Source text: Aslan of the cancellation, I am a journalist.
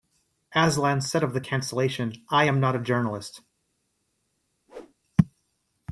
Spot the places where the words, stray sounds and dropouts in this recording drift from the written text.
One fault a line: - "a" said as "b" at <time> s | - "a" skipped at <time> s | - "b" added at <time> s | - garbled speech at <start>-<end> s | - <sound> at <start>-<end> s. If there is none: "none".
- "said" added at 1.0 s
- "not" added at 2.6 s
- whoosh at 4.7-4.9 s